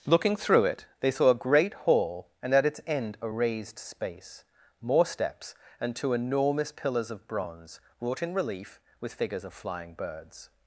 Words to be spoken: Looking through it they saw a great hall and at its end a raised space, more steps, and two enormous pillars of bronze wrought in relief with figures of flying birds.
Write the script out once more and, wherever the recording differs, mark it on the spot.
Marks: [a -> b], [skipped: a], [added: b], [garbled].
Looking through it they saw a great hall and at its end a raised space, more steps, and two enormous pillars of bronze wrought in relief with figures of flying birds.